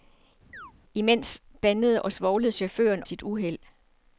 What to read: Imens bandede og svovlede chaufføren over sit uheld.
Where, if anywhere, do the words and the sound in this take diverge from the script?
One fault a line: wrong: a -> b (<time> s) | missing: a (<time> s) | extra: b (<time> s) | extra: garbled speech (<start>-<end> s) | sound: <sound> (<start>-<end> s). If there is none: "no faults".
sound: chirp (0.5-0.7 s)
missing: over (3.0 s)